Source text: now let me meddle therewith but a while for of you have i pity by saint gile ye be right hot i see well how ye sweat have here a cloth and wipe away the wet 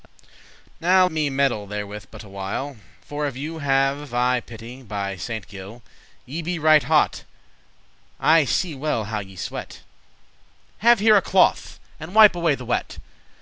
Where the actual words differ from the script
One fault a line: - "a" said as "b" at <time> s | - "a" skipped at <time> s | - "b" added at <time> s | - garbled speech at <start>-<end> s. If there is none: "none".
- "let" skipped at 1.1 s